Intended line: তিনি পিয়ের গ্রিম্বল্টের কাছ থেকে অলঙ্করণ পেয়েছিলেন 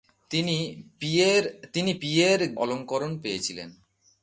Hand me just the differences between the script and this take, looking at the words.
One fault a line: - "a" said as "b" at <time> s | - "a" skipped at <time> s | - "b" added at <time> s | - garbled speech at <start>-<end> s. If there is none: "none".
- "গ্রিম্বল্টের কাছ থেকে" skipped at 2.4 s